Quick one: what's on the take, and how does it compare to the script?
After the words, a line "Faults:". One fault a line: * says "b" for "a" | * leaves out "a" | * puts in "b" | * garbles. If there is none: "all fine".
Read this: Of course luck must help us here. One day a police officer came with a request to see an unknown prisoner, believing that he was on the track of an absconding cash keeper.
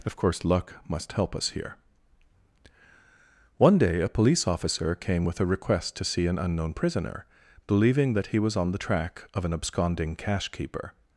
Of course luck must help us here. One day a police officer came with a request to see an unknown prisoner, believing that he was on the track of an absconding cash keeper.
Faults:
all fine